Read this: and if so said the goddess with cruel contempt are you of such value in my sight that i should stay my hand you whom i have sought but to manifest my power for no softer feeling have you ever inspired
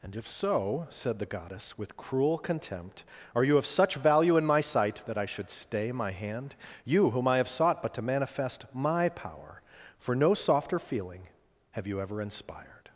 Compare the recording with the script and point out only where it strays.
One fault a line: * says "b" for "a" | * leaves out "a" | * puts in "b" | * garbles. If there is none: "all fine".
all fine